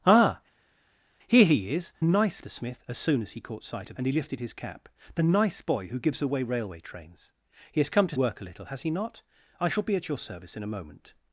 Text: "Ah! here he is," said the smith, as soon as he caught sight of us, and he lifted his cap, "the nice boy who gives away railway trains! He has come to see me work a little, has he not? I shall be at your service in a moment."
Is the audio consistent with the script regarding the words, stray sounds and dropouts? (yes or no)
no